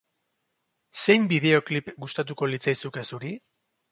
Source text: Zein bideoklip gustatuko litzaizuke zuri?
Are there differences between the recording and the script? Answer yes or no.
no